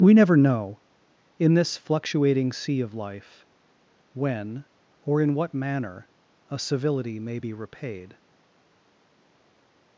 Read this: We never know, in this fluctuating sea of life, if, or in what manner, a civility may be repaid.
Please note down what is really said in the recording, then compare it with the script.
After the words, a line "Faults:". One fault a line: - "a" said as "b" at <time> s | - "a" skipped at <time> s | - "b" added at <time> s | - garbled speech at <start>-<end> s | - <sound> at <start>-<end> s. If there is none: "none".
We never know, in this fluctuating sea of life, when, or in what manner, a civility may be repaid.
Faults:
- "if" said as "when" at 4.2 s